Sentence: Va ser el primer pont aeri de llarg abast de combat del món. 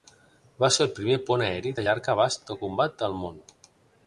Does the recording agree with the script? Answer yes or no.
yes